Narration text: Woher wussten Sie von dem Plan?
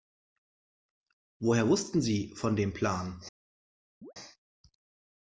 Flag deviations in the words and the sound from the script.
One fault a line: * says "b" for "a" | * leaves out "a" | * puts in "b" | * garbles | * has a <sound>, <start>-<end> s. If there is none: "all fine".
* has a chirp, 4.0-4.1 s